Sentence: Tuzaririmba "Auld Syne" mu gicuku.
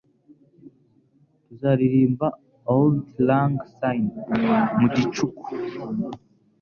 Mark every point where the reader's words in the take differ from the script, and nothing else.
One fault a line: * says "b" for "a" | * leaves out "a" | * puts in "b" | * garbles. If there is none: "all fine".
* puts in "Lang"